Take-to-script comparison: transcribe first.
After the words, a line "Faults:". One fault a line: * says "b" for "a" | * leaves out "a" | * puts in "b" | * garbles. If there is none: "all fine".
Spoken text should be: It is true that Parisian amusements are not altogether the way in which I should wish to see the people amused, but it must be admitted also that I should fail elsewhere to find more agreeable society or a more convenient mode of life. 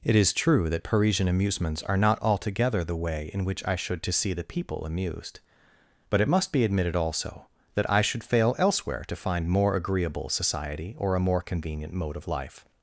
It is true that Parisian amusements are not altogether the way in which I should to see the people amused, but it must be admitted also that I should fail elsewhere to find more agreeable society or a more convenient mode of life.
Faults:
* leaves out "wish"